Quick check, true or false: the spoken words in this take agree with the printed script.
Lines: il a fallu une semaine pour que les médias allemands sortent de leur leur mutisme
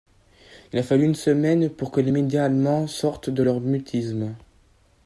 false